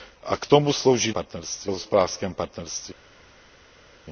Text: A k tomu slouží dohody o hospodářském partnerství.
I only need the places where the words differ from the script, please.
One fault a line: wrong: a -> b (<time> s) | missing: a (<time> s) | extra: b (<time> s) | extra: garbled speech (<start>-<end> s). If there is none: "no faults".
wrong: dohody -> partnerství (1.1 s)